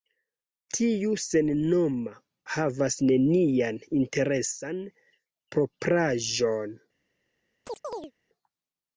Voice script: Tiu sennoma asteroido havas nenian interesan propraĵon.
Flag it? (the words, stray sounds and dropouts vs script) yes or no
yes